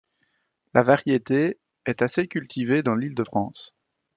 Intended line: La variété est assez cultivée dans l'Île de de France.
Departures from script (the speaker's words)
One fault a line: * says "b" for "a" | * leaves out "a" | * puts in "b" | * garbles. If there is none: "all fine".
* leaves out "de"